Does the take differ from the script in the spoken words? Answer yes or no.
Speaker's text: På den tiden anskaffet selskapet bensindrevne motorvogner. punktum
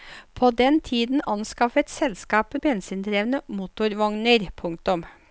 no